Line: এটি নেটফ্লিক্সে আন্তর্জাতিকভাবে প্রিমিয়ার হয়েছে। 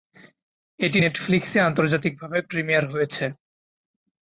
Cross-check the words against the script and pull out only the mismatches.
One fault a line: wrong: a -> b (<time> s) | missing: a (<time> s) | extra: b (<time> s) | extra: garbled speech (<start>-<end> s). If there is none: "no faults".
no faults